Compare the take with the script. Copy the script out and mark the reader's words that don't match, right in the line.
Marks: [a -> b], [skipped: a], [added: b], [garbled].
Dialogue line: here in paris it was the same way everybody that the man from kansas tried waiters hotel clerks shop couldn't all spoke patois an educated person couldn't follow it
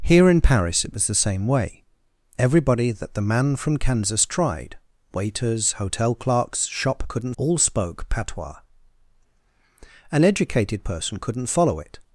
here in paris it was the same way everybody that the man from kansas tried waiters hotel clerks shop couldn't all spoke patois an educated person couldn't follow it